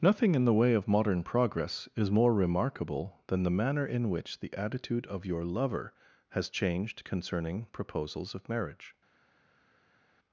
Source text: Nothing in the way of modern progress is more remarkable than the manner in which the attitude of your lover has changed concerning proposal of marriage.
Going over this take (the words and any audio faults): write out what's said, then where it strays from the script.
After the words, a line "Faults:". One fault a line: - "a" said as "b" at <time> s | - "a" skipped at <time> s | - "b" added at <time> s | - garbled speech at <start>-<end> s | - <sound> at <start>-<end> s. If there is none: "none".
Nothing in the way of modern progress is more remarkable than the manner in which the attitude of your lover has changed concerning proposals of marriage.
Faults:
- "proposal" said as "proposals" at 7.7 s